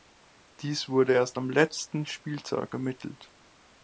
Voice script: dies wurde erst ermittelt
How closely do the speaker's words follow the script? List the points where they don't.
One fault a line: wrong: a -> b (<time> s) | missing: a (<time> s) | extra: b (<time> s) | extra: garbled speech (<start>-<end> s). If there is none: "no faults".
extra: am letzten spieltag (1.4 s)